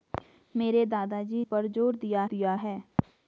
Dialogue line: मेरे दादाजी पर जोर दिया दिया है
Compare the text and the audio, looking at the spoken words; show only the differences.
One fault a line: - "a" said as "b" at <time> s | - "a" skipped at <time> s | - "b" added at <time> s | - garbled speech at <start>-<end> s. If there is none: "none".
none